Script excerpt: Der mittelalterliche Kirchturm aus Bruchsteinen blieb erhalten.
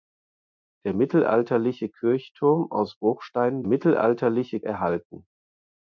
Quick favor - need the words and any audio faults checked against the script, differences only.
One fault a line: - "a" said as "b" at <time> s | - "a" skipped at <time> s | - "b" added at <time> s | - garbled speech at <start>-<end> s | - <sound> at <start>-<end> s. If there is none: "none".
- "blieb" said as "mittelalterliche" at 3.7 s